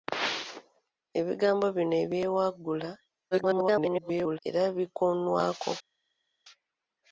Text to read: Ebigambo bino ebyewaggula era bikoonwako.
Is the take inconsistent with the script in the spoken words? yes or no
yes